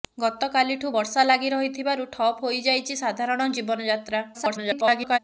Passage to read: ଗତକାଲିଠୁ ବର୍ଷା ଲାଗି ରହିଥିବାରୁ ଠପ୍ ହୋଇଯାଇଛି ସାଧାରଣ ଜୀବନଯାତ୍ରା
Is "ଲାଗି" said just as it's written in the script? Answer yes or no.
yes